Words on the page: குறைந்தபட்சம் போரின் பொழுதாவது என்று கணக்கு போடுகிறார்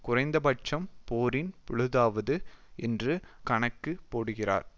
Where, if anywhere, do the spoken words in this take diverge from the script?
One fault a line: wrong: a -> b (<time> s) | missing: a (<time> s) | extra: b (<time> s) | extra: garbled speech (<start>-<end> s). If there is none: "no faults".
no faults